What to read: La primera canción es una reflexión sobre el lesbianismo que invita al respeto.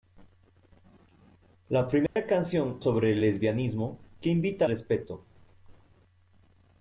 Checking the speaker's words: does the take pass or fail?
fail